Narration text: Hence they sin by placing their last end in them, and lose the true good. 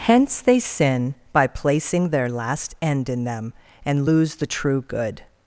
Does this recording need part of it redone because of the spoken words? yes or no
no